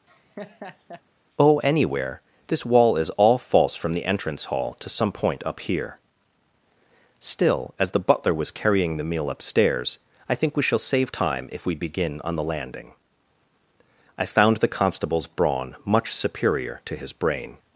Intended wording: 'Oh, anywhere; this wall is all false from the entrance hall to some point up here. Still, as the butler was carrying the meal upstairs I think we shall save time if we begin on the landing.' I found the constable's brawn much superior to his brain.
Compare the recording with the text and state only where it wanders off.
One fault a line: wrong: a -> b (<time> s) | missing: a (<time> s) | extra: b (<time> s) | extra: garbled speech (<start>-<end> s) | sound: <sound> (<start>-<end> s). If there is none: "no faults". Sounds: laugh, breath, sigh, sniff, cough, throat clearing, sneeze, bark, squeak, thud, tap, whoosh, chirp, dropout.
sound: laugh (0.1-1.0 s)